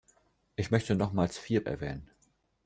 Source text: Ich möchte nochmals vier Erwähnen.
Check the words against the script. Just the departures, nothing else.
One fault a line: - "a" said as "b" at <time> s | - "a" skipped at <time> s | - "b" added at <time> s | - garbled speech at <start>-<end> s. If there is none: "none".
none